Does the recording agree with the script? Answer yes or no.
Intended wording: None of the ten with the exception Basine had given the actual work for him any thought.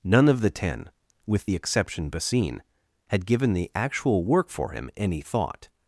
yes